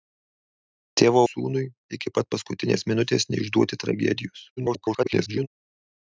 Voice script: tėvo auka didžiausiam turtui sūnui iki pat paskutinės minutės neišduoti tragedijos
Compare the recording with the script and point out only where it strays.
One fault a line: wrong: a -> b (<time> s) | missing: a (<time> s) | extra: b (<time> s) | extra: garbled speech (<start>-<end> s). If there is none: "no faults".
missing: auka didžiausiam turtui (1.2 s)
extra: garbled speech (4.6-5.5 s)